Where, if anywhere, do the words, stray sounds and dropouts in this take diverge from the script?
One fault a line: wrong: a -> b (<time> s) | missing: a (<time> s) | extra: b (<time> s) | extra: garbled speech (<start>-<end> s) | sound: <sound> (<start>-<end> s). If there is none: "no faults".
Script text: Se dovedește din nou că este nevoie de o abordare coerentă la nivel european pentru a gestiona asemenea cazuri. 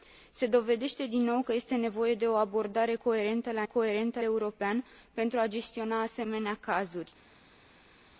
wrong: nivel -> coerentă (3.6 s)